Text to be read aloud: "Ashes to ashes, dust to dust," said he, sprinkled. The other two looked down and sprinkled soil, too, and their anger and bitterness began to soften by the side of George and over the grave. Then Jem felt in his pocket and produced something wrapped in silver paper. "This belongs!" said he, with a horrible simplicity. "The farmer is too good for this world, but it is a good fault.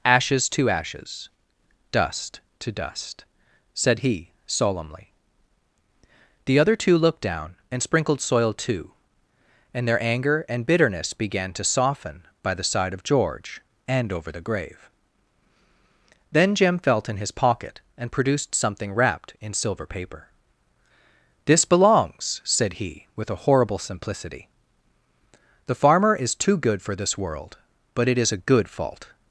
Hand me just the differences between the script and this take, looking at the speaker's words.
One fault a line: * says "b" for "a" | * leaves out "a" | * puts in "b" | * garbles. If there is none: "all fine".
* says "solemnly" for "sprinkled"